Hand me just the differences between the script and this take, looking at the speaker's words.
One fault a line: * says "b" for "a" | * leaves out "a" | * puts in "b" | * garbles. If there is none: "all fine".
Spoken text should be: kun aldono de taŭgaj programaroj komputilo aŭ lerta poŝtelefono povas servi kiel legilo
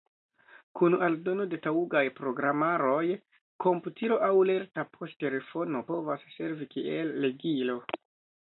all fine